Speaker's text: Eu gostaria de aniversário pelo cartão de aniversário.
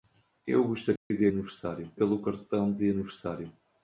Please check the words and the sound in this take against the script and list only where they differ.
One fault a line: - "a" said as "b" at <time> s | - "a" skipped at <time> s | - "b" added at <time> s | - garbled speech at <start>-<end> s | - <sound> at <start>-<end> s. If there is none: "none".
- dropout at 1.0-1.1 s